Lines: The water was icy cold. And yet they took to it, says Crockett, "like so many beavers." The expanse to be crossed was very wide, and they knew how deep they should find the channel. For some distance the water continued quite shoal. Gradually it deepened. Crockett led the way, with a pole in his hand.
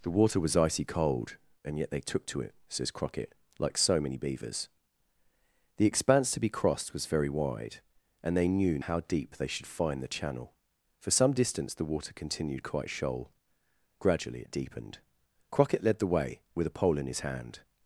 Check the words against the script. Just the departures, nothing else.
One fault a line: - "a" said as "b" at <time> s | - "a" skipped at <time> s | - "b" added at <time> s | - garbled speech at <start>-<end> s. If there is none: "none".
none